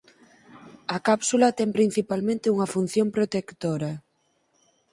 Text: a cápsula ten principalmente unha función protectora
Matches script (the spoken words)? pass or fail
pass